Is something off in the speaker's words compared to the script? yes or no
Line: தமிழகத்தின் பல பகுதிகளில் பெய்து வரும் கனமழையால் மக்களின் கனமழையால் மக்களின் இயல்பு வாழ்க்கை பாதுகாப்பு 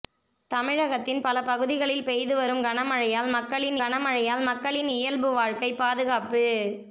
no